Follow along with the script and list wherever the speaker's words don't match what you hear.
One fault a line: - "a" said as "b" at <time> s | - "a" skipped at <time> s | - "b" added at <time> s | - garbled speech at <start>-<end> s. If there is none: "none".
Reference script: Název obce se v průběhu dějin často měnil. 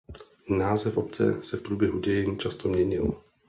none